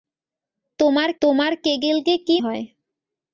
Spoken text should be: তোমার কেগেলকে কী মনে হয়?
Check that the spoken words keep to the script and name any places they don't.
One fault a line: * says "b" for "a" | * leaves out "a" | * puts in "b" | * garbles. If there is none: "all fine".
* puts in "তোমার"
* leaves out "মনে"